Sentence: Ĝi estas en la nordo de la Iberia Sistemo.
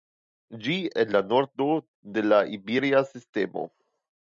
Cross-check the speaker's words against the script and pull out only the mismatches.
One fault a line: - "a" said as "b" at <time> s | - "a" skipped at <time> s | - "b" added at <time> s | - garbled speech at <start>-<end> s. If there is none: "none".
- "estas" skipped at 0.8 s